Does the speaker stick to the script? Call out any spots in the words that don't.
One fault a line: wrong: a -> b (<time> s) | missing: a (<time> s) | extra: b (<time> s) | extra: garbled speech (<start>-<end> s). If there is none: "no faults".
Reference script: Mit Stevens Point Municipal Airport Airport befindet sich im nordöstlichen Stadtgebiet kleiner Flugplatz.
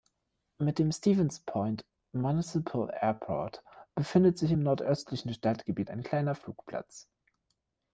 extra: dem (0.8 s)
missing: Airport (3.6 s)
extra: ein (5.9 s)